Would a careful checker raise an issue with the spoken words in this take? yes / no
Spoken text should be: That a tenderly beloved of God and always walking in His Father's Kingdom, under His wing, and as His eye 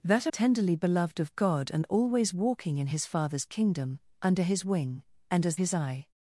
no